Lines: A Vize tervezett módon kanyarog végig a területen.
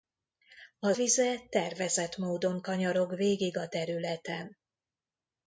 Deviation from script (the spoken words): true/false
false